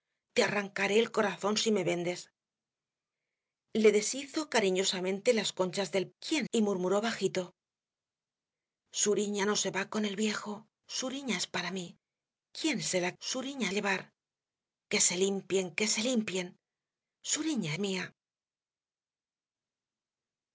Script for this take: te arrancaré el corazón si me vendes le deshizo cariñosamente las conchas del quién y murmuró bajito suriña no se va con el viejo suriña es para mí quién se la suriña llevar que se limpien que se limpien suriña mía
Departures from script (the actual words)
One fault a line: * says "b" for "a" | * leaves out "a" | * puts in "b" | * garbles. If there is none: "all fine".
all fine